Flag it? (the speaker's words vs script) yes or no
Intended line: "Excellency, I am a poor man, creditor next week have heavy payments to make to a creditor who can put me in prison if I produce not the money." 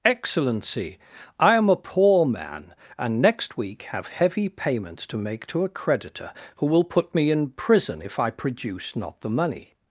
yes